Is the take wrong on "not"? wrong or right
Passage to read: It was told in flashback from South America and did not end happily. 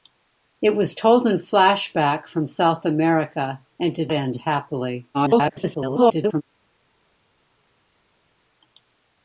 wrong